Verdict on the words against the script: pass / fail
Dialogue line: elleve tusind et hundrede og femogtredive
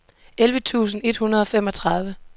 pass